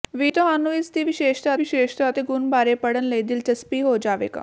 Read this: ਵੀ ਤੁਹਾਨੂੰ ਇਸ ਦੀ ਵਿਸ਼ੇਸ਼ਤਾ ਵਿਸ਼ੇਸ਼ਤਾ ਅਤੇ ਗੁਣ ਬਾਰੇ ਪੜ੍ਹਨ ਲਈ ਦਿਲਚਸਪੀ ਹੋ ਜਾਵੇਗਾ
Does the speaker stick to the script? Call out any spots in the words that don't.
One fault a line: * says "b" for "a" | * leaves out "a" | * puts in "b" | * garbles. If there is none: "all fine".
all fine